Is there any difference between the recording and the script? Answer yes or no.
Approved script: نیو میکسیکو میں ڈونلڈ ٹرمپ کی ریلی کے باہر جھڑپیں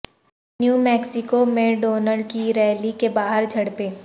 yes